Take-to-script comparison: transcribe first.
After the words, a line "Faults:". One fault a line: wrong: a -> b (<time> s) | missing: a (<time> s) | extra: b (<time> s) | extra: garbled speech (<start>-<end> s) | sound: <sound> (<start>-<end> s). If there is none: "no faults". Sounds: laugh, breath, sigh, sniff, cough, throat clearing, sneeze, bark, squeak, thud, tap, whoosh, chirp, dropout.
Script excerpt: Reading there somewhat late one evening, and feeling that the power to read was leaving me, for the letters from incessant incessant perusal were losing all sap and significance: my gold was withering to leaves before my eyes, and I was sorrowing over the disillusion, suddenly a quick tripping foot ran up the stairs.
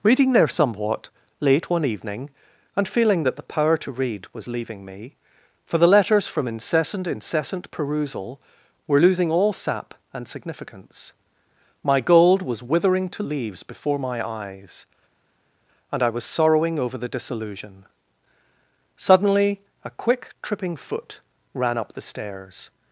Reading there somewhat late one evening, and feeling that the power to read was leaving me, for the letters from incessant incessant perusal were losing all sap and significance: my gold was withering to leaves before my eyes, and I was sorrowing over the disillusion, suddenly a quick tripping foot ran up the stairs.
Faults:
no faults